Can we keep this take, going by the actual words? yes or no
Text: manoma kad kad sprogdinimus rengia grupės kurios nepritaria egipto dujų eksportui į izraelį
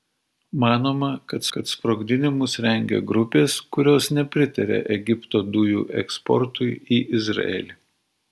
yes